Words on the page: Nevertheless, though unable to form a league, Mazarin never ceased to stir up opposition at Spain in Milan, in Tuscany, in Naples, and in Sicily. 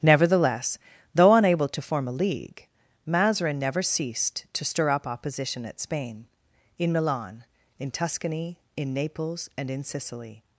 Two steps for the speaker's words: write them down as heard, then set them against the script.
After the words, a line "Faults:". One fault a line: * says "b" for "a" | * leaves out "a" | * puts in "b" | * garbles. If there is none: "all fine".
Nevertheless, though unable to form a league, Mazarin never ceased to stir up opposition at Spain in Milan, in Tuscany, in Naples, and in Sicily.
Faults:
all fine